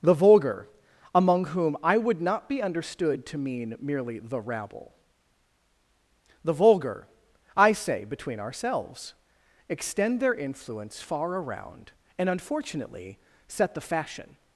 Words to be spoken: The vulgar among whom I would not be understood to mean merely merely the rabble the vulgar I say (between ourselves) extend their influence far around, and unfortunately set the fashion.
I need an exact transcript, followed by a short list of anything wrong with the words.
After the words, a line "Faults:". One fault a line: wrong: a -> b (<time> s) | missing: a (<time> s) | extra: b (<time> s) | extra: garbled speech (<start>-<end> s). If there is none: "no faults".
The vulgar among whom I would not be understood to mean merely the rabble the vulgar I say (between ourselves) extend their influence far around, and unfortunately set the fashion.
Faults:
missing: merely (4.2 s)